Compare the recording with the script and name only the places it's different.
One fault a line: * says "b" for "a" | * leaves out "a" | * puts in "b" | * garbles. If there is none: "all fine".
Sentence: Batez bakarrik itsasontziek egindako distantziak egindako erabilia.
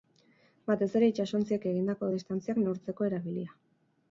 * says "ere" for "bakarrik"
* says "neurtzeko" for "egindako"